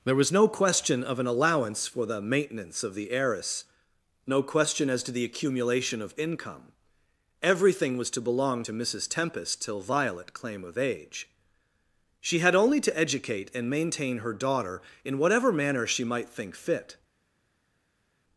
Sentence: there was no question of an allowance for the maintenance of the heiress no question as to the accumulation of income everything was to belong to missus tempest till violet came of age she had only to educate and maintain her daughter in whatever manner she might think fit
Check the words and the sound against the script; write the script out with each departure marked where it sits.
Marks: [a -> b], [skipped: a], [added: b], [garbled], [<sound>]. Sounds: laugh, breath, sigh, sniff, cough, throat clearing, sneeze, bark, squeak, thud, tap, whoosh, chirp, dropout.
there was no question of an allowance for the maintenance of the heiress no question as to the accumulation of income everything was to belong to missus tempest till violet [came -> claim] of age she had only to educate and maintain her daughter in whatever manner she might think fit